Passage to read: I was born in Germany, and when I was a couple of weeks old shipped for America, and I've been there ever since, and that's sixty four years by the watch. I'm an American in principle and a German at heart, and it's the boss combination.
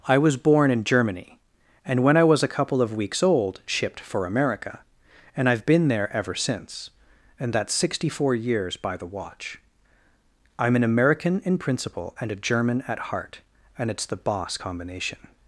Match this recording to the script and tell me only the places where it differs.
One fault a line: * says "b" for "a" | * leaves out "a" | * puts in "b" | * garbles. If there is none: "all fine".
all fine